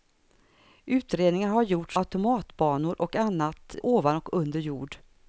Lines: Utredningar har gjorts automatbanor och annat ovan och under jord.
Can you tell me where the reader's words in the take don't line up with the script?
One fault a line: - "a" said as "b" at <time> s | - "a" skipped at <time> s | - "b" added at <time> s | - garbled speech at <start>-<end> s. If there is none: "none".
none